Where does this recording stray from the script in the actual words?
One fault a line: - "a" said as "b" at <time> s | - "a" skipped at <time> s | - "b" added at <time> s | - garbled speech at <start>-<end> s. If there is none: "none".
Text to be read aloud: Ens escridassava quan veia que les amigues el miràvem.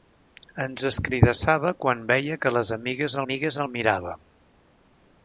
- "amigues" added at 3.2 s